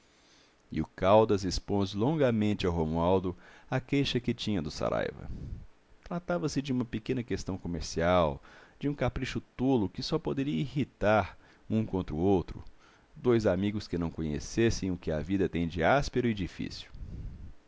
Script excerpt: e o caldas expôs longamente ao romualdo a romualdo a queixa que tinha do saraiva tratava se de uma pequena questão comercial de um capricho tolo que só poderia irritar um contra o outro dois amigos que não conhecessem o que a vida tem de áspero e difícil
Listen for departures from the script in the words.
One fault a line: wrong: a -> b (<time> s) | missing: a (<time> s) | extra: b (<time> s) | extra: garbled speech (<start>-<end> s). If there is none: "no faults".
missing: romualdo a (3.8 s)